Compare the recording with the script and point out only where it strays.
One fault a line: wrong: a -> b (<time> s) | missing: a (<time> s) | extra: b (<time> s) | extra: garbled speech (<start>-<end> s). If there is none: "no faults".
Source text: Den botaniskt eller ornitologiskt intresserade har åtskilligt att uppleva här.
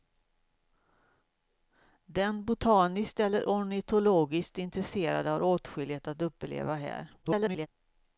extra: garbled speech (7.2-7.7 s)